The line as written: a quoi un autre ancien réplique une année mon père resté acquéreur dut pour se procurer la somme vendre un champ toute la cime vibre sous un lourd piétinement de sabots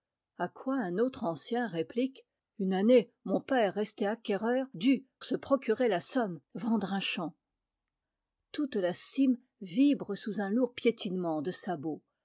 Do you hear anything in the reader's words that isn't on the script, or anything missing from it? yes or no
yes